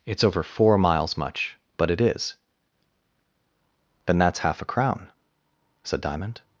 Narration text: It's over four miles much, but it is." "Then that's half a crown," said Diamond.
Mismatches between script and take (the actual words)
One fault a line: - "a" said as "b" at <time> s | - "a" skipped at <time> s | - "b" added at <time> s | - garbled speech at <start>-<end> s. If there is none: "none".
none